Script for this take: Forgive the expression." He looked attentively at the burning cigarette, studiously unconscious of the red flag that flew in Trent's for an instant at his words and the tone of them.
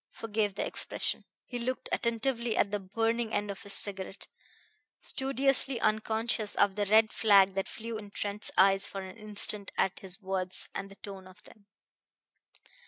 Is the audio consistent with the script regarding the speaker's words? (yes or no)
no